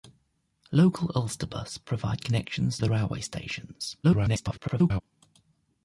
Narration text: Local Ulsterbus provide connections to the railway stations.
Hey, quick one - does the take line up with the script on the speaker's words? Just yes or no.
no